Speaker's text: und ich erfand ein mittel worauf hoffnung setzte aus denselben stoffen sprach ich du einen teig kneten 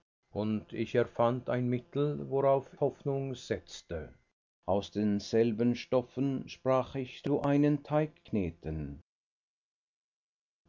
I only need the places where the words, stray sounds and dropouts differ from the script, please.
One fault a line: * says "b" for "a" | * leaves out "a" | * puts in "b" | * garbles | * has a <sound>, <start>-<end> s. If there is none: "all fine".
all fine